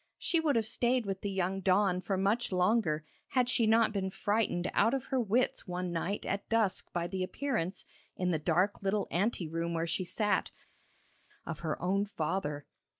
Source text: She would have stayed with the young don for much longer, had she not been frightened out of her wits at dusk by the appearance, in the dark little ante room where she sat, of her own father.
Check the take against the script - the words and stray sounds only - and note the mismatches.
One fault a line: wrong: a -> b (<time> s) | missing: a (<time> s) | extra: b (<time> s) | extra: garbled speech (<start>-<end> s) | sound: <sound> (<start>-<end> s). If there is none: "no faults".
extra: one night (5.7 s)